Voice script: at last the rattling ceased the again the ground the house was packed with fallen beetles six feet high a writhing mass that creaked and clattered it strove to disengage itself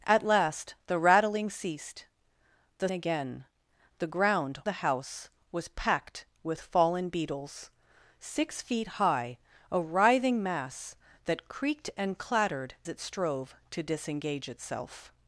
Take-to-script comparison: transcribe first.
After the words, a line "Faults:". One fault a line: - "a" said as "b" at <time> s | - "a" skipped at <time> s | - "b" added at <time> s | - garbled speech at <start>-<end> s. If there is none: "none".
at last the rattling ceased the again the ground the house was packed with fallen beetles six feet high a writhing mass that creaked and clattered it strove to disengage itself
Faults:
none